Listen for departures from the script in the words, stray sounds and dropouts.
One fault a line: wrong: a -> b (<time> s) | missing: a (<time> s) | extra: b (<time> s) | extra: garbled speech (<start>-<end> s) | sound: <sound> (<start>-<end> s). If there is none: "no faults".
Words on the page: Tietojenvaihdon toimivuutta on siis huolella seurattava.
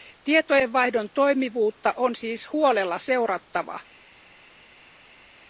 no faults